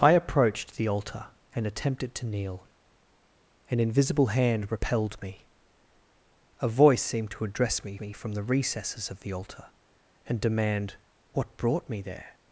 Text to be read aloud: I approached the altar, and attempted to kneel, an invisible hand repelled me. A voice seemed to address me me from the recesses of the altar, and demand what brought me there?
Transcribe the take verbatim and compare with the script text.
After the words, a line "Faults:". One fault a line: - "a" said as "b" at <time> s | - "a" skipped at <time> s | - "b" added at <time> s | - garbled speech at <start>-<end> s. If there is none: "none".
I approached the altar, and attempted to kneel, an invisible hand repelled me. A voice seemed to address me me from the recesses of the altar, and demand what brought me there?
Faults:
none